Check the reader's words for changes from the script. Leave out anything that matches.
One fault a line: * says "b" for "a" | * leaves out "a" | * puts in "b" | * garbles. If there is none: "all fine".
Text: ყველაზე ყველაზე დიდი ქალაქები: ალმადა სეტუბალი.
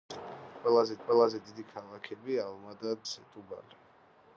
all fine